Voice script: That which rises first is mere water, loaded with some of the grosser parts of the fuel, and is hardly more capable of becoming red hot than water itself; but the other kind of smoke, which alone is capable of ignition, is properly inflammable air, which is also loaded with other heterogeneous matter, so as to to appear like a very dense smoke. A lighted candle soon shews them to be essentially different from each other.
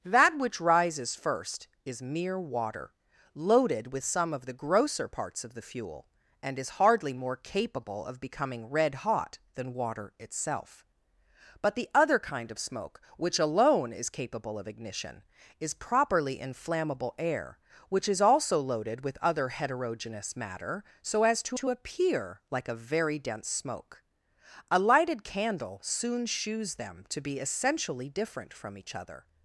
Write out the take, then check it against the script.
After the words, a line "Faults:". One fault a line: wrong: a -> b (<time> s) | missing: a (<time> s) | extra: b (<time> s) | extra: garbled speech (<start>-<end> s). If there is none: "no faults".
That which rises first is mere water, loaded with some of the grosser parts of the fuel, and is hardly more capable of becoming red hot than water itself; but the other kind of smoke, which alone is capable of ignition, is properly inflammable air, which is also loaded with other heterogeneous matter, so as to to appear like a very dense smoke. A lighted candle soon shews them to be essentially different from each other.
Faults:
no faults